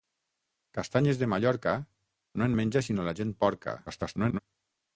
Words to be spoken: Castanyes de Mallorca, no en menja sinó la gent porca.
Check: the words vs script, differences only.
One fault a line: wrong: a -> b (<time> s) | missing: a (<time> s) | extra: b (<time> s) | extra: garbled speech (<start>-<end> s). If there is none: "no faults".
extra: garbled speech (3.9-4.4 s)